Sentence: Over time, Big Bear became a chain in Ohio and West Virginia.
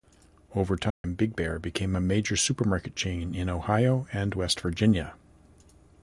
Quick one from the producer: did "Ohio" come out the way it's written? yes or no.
yes